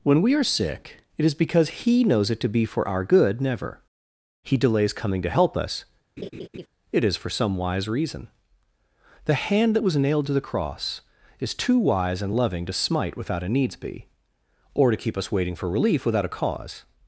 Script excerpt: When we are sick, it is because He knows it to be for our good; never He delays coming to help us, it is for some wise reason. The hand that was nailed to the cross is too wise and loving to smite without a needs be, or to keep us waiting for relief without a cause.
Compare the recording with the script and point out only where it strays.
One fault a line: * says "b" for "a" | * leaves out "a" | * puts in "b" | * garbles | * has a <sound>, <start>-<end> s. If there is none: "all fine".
* has a laugh, 6.2-6.7 s